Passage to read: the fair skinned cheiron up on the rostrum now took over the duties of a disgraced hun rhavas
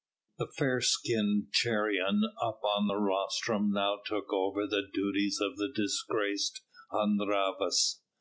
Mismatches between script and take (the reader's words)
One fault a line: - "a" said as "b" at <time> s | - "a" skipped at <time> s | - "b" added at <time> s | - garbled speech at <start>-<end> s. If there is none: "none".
- "a" said as "the" at 5.6 s